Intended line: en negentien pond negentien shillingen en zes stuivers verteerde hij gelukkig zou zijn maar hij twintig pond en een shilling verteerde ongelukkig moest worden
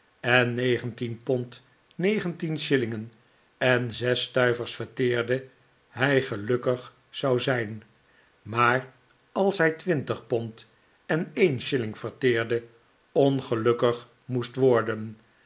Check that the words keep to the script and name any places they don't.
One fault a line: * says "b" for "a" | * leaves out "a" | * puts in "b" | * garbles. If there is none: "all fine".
* puts in "als"